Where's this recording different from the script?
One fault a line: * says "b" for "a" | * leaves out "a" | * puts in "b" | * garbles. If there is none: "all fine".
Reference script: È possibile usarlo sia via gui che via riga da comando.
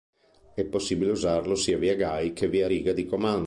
* says "di" for "da"